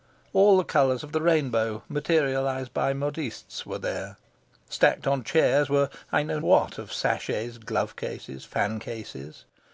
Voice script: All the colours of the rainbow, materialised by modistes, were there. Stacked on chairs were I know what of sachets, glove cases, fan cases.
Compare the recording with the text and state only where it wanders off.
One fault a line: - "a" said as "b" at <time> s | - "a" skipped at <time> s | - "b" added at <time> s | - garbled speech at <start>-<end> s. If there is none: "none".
none